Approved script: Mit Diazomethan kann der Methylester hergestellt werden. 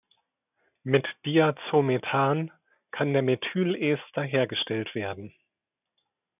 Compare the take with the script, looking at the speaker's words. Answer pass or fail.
pass